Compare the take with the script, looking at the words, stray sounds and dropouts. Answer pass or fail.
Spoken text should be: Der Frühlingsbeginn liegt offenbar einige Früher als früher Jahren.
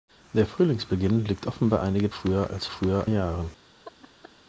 fail